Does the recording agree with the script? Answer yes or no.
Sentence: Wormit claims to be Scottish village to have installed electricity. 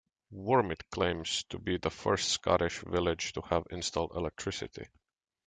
no